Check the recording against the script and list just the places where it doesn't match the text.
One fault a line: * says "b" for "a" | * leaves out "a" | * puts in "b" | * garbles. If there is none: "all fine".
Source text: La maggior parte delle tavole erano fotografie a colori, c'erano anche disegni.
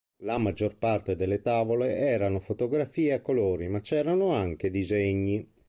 * puts in "ma"